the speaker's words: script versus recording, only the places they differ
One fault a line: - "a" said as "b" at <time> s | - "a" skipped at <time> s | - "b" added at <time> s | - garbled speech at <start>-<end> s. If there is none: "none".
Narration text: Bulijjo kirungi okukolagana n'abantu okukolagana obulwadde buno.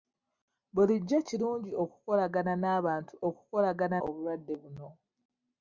none